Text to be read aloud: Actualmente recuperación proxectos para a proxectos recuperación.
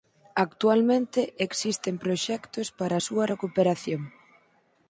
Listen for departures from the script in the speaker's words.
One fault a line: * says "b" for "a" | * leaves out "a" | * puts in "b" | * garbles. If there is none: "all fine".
* says "existen" for "recuperación"
* says "súa" for "proxectos"